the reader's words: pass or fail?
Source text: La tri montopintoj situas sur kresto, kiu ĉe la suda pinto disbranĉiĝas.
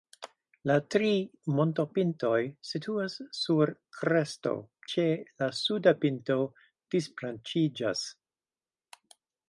fail